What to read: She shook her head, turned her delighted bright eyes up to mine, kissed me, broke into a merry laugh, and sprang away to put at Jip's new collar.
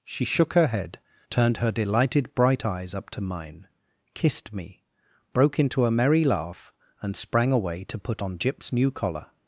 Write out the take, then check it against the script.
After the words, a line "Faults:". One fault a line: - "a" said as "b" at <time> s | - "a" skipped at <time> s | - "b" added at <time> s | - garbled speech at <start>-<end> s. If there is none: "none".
She shook her head, turned her delighted bright eyes up to mine, kissed me, broke into a merry laugh, and sprang away to put on Jip's new collar.
Faults:
- "at" said as "on" at 8.2 s